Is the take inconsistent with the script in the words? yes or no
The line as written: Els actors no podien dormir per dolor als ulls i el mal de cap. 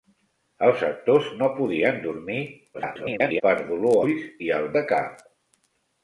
yes